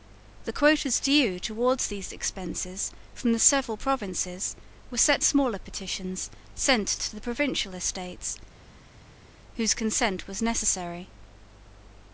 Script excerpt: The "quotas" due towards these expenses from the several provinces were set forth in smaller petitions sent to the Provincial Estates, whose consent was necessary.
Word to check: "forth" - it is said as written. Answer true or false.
false